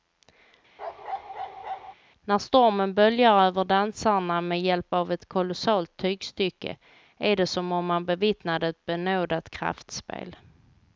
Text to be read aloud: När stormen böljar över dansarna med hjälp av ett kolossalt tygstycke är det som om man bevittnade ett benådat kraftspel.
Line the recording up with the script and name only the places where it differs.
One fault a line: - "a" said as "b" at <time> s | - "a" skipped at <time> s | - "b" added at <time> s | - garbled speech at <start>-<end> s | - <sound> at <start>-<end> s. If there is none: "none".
- bark at 0.8-1.9 s